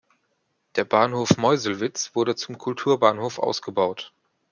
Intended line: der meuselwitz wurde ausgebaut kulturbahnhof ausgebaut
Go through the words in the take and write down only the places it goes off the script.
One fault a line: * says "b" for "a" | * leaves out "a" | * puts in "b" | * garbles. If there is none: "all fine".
* puts in "bahnhof"
* says "zum" for "ausgebaut"